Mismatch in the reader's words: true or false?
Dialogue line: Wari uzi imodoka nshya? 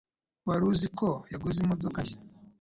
true